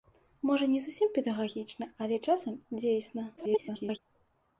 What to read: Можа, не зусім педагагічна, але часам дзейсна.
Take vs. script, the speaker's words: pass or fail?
fail